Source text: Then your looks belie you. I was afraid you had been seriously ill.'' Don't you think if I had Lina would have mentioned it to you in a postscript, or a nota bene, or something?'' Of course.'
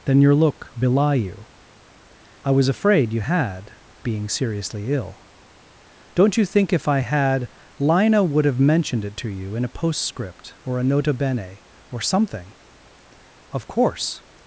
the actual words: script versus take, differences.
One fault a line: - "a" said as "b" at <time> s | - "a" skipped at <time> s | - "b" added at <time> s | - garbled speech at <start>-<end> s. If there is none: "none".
- "looks" said as "look" at 0.3 s
- "been" said as "being" at 4.0 s